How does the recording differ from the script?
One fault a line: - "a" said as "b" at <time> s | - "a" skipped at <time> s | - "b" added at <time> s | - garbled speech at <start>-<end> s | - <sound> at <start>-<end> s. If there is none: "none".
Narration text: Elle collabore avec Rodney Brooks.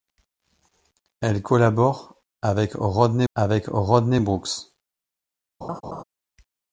- "avec Rodney" added at 3.3 s
- laugh at 5.6-6.0 s